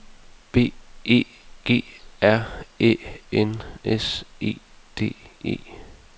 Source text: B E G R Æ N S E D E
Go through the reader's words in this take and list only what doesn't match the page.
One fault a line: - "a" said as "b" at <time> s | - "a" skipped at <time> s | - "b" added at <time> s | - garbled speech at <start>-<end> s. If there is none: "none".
none